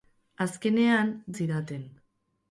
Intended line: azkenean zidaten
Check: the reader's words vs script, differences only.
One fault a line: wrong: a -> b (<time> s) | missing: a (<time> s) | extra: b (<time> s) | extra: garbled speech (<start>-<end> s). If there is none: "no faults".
no faults